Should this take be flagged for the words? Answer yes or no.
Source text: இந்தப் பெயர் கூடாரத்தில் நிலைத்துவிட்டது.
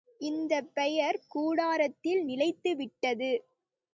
no